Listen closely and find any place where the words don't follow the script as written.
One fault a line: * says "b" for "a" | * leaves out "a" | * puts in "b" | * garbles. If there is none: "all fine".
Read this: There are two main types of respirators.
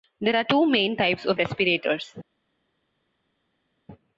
all fine